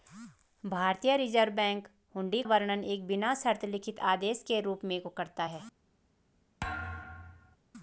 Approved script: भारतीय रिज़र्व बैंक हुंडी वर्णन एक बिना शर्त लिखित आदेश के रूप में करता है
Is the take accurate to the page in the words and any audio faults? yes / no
no